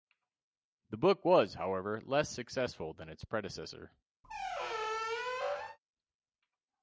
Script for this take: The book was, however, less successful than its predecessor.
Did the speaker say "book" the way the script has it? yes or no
yes